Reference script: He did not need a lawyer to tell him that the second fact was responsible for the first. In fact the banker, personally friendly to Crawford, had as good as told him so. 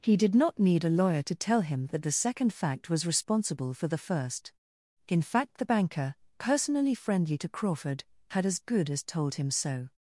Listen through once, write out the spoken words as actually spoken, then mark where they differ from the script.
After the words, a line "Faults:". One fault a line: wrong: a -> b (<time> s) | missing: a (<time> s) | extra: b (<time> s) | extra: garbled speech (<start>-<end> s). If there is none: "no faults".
He did not need a lawyer to tell him that the second fact was responsible for the first. In fact the banker, personally friendly to Crawford, had as good as told him so.
Faults:
no faults